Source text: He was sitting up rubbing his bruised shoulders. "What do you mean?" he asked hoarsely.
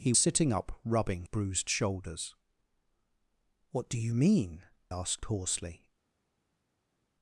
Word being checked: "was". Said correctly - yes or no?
no